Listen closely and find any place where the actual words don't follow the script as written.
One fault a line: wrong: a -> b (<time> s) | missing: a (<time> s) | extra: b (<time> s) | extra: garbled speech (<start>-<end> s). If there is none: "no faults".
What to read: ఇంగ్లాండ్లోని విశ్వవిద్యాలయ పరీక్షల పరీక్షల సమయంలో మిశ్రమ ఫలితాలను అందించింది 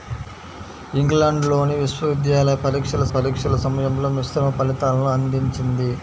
no faults